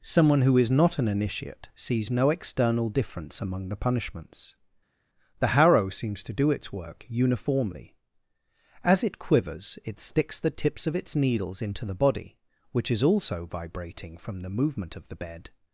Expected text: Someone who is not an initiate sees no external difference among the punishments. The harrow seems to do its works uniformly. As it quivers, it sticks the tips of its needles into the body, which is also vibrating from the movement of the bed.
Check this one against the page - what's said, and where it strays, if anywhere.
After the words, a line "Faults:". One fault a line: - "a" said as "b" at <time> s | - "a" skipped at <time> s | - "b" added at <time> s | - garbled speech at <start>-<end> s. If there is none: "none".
Someone who is not an initiate sees no external difference among the punishments. The harrow seems to do its work uniformly. As it quivers, it sticks the tips of its needles into the body, which is also vibrating from the movement of the bed.
Faults:
- "works" said as "work" at 6.7 s